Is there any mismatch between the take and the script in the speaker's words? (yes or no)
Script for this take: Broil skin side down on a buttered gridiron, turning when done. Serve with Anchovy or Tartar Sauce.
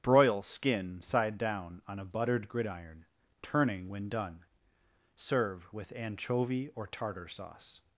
no